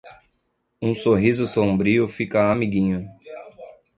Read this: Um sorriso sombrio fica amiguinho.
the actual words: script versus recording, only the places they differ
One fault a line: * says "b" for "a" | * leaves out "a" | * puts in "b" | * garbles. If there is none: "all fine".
all fine